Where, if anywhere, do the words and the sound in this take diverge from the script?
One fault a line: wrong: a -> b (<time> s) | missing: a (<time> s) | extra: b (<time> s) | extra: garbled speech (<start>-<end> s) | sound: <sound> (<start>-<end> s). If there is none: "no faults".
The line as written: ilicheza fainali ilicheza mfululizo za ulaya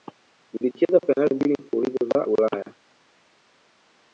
wrong: ilicheza -> mbili (1.4 s)